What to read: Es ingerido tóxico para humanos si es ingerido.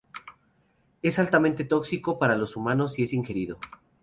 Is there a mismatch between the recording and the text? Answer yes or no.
yes